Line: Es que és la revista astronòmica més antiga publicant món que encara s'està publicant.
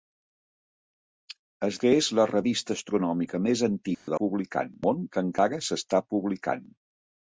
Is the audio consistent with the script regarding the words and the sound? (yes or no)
no